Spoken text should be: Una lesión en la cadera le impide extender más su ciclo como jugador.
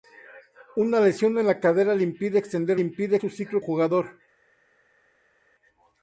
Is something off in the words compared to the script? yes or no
yes